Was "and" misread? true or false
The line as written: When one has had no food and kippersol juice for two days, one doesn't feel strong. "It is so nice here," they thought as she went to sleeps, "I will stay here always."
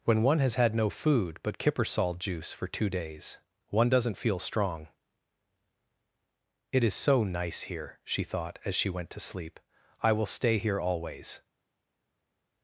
true